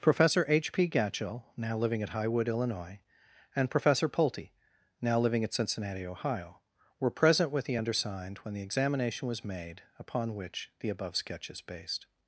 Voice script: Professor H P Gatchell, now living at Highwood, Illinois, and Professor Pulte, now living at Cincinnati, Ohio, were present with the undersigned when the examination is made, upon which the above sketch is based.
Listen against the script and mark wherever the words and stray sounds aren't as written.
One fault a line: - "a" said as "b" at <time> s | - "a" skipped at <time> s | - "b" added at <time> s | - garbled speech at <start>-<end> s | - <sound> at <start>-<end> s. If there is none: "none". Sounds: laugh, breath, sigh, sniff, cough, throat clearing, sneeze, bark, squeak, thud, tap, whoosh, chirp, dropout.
- "is" said as "was" at 9.3 s